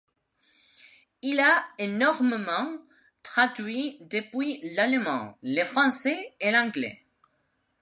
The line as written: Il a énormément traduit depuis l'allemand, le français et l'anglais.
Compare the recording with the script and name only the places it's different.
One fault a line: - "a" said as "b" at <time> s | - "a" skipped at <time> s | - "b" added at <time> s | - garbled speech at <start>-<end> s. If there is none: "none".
none